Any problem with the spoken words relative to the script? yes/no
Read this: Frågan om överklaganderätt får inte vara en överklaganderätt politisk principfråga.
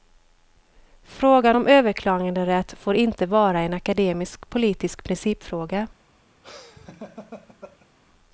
yes